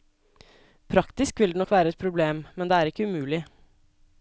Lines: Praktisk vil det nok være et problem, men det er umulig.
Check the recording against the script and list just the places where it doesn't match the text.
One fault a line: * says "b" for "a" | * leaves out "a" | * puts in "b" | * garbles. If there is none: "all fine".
* puts in "ikke"